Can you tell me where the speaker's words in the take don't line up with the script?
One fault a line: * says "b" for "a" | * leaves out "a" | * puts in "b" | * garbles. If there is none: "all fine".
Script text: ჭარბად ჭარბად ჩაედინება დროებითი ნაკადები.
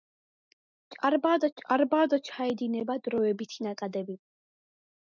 all fine